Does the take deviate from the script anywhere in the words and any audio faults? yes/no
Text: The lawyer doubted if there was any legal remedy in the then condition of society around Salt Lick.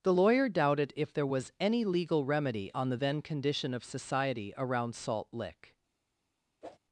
yes